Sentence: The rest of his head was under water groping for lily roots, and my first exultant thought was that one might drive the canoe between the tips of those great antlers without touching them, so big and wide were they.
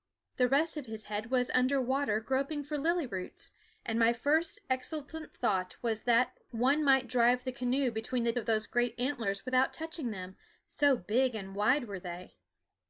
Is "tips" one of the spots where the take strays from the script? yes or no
yes